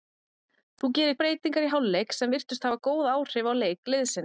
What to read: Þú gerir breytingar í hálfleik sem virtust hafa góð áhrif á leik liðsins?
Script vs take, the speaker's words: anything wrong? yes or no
no